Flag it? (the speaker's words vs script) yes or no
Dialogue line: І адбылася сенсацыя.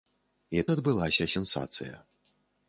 no